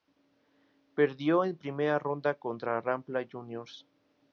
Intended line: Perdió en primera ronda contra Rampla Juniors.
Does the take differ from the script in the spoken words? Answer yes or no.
no